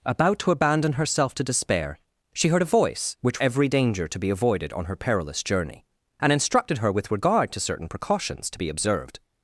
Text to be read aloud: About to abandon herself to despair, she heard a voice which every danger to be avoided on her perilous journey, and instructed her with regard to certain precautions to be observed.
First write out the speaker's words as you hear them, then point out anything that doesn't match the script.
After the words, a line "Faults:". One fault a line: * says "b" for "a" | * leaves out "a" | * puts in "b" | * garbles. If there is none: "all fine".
About to abandon herself to despair, she heard a voice which every danger to be avoided on her perilous journey, and instructed her with regard to certain precautions to be observed.
Faults:
all fine